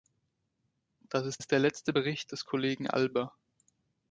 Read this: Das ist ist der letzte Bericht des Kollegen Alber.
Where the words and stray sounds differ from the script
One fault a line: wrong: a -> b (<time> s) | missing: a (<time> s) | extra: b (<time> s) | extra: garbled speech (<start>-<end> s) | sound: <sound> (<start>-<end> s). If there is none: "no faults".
no faults